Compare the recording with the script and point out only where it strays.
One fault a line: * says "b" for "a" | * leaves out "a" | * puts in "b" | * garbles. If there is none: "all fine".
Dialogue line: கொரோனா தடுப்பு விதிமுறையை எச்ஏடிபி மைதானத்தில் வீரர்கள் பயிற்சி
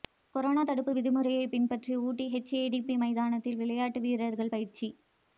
* puts in "பின்பற்றி ஊட்டி"
* puts in "விளையாட்டு"